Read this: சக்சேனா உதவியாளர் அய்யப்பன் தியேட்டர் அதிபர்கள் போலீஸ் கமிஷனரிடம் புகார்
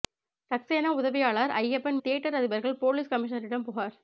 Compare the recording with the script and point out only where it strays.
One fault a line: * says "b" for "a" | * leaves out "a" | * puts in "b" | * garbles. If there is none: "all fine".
all fine